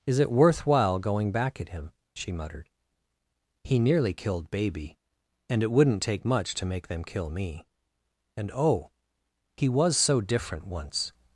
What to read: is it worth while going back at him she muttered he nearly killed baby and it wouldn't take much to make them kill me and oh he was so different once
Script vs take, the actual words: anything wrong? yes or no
no